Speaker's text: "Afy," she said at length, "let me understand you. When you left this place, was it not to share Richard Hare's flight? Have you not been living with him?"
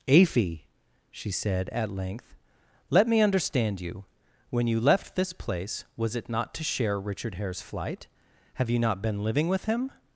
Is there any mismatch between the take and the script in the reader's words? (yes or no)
no